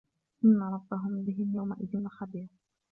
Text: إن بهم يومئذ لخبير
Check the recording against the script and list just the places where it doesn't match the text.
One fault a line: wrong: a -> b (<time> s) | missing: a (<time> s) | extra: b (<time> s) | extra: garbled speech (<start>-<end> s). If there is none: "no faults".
extra: ربهم (0.6 s)